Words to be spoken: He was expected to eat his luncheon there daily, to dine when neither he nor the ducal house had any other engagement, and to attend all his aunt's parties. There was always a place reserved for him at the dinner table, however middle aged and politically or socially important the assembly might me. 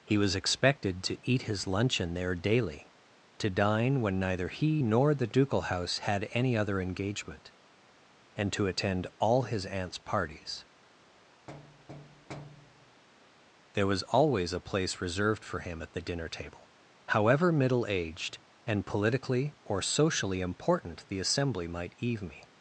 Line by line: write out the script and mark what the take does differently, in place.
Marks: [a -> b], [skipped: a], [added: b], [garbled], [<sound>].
He was expected to eat his luncheon there daily, to dine when neither he nor the ducal house had any other engagement, and to attend all his aunt's parties. [thud] There was always a place reserved for him at the dinner table, however middle aged and politically or socially important the assembly might [added: eve] me.